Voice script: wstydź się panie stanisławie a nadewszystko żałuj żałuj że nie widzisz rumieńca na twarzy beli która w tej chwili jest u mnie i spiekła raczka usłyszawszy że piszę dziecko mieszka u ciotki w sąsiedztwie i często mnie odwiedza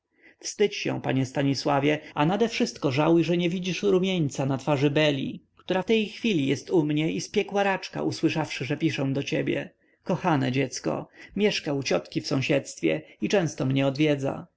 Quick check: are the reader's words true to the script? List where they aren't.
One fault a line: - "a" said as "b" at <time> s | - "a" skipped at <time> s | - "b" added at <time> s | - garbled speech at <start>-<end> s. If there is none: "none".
- "żałuj" skipped at 3.2 s
- "do ciebie kochane" added at 9.1 s